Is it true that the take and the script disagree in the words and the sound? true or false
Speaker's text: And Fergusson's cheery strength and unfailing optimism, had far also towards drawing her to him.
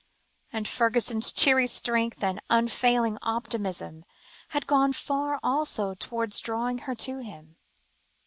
true